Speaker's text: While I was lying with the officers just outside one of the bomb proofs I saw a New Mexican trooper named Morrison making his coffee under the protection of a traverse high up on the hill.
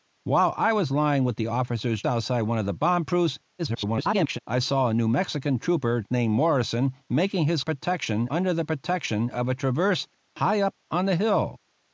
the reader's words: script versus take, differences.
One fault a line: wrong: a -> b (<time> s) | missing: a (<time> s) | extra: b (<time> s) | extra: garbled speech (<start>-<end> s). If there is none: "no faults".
missing: just (2.0 s)
extra: garbled speech (3.6-4.4 s)
wrong: coffee -> protection (7.6 s)